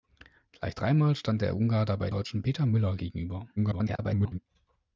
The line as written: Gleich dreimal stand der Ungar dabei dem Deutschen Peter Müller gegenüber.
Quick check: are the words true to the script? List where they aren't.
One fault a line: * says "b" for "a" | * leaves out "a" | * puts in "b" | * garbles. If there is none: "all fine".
* leaves out "dem"
* garbles